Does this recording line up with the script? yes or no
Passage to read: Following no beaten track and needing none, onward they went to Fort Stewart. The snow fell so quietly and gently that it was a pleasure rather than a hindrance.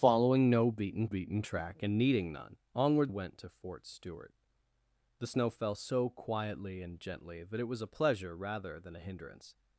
no